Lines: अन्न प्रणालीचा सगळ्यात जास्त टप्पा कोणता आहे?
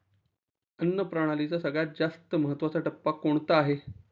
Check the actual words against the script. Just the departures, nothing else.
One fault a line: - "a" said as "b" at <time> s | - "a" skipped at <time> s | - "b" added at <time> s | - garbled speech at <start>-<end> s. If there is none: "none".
- "महत्वाचा" added at 2.4 s